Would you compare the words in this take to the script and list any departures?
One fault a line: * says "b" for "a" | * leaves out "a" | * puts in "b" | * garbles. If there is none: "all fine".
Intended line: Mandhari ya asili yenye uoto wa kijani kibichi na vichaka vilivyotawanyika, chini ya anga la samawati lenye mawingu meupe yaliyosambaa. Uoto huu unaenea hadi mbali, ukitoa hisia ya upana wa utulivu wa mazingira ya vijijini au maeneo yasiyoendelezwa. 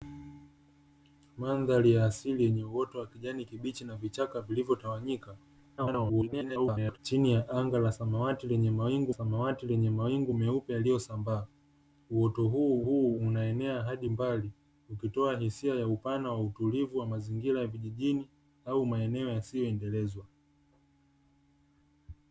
* garbles
* puts in "samawati lenye mawingu"
* puts in "huu"